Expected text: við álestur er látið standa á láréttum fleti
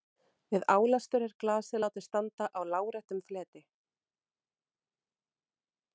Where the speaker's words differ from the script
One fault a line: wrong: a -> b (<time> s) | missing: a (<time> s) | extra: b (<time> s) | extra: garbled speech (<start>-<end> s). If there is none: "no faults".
extra: glasið (1.4 s)